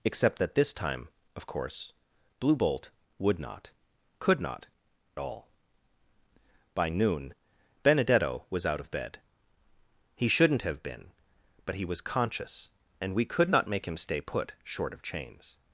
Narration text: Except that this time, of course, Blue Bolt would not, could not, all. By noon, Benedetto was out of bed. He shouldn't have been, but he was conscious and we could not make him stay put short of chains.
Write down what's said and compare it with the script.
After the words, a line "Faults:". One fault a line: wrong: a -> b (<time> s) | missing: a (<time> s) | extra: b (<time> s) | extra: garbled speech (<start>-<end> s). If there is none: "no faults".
Except that this time, of course, Blue Bolt would not, could not, all. By noon, Benedetto was out of bed. He shouldn't have been, but he was conscious and we could not make him stay put short of chains.
Faults:
no faults